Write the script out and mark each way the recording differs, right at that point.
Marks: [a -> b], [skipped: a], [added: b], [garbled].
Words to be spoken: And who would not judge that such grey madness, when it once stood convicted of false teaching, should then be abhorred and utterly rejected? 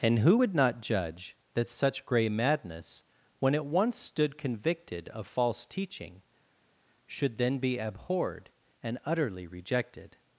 And who would not judge that such grey madness, when it once stood convicted of false teaching, should then be abhorred and utterly rejected?